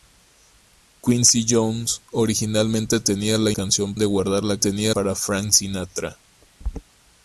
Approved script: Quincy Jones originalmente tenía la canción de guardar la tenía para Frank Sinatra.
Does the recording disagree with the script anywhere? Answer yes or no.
no